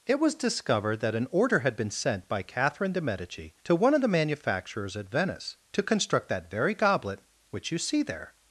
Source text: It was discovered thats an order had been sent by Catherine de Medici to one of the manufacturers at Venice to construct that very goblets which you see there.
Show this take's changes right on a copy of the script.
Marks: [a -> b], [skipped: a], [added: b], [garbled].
It was discovered [thats -> that] an order had been sent by Catherine de Medici to one of the manufacturers at Venice to construct that very [goblets -> goblet] which you see there.